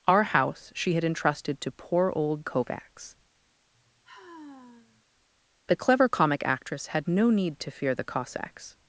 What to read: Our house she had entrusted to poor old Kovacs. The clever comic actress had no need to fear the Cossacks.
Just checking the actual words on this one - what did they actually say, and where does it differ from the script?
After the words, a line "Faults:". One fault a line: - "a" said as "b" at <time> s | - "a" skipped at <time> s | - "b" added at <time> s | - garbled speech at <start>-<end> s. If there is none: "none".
Our house she had entrusted to poor old Kovacs. The clever comic actress had no need to fear the Cossacks.
Faults:
none